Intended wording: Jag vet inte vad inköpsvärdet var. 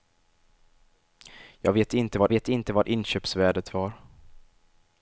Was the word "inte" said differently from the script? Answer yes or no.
no